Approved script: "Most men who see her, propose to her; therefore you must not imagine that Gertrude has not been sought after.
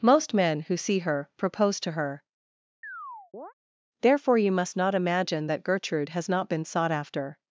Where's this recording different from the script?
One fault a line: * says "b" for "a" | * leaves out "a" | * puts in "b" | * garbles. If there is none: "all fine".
all fine